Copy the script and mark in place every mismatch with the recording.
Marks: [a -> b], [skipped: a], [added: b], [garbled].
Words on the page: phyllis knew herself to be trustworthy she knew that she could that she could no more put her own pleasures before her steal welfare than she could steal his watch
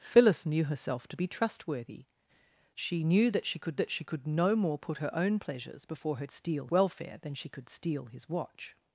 phyllis knew herself to be trustworthy she knew that she could that she could no more put her own pleasures before her steal welfare than she could steal his watch